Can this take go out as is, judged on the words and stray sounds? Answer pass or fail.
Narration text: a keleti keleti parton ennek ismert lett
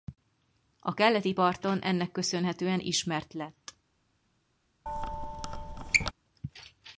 fail